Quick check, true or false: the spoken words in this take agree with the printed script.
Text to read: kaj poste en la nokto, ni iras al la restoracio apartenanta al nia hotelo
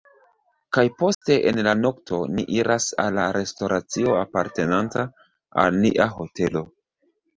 true